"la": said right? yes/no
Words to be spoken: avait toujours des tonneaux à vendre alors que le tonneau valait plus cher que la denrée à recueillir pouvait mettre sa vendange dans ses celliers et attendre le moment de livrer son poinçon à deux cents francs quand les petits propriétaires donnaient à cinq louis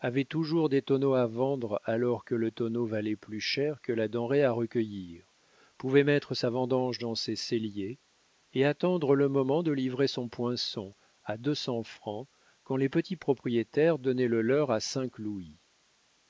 yes